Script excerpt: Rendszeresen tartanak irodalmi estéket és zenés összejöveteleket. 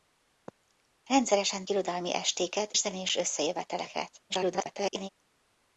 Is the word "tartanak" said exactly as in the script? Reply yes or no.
no